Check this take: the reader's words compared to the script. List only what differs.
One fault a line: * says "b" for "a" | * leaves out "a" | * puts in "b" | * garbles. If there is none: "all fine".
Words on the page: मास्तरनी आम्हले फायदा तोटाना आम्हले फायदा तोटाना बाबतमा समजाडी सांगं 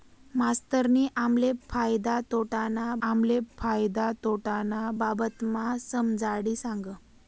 all fine